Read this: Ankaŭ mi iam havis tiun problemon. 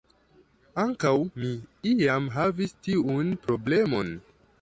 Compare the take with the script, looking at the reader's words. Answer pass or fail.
pass